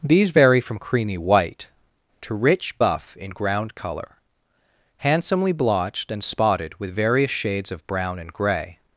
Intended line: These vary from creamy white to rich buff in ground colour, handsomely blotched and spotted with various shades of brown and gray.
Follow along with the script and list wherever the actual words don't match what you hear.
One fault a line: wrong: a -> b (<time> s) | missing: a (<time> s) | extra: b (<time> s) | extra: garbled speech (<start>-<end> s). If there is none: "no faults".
no faults